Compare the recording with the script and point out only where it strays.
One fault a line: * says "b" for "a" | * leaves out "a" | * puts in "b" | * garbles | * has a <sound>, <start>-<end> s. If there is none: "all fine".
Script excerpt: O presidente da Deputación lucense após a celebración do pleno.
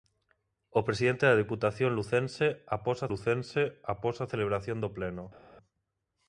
* puts in "lucense após a"